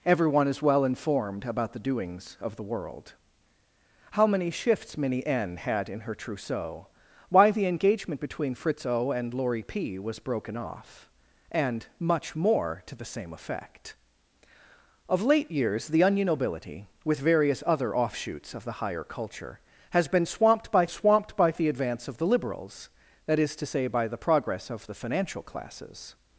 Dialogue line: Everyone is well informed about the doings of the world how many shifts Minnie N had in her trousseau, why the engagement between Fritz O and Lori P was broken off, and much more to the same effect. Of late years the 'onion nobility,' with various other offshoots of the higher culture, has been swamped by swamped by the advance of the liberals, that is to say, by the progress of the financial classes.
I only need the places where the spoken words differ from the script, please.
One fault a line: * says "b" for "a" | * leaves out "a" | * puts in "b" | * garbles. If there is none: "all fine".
all fine